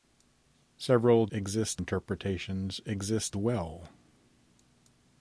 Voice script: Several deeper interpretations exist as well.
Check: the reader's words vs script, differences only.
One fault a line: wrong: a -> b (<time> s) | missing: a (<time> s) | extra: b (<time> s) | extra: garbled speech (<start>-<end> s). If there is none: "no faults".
wrong: deeper -> exist (1.3 s)
missing: as (3.4 s)